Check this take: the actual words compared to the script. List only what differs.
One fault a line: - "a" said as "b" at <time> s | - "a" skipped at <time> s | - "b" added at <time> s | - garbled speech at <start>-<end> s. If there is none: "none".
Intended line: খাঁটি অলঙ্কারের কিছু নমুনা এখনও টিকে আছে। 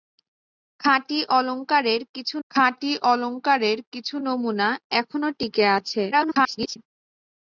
- "খাঁটি অলঙ্কারের কিছু" added at 2.5 s
- garbled speech at 6.1-6.8 s